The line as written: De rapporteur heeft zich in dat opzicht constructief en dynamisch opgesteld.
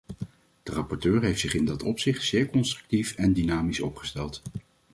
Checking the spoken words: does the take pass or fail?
fail